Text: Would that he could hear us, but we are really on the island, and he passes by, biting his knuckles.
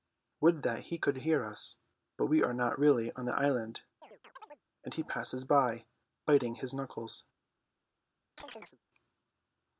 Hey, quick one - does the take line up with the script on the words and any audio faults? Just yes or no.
no